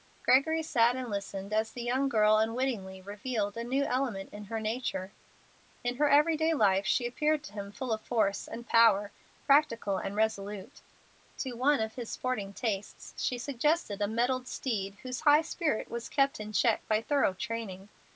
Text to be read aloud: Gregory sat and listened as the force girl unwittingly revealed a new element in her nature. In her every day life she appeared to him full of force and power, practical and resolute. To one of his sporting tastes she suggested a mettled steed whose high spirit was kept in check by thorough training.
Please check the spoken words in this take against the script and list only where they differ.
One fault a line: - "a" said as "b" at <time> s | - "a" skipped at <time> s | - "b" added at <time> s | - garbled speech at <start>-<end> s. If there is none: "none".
- "force" said as "young" at 1.8 s